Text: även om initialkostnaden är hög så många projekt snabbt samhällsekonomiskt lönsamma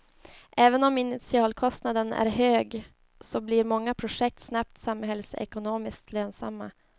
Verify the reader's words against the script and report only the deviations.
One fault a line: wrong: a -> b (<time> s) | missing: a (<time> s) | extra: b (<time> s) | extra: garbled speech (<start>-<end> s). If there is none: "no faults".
extra: blir (3.4 s)